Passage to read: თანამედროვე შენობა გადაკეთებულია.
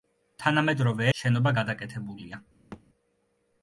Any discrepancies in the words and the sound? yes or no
yes